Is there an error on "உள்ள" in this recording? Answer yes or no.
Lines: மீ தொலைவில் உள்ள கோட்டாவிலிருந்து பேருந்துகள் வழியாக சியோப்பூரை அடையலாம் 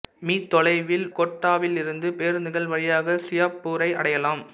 yes